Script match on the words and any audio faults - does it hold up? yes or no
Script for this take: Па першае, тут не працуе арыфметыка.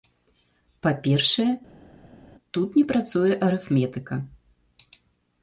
yes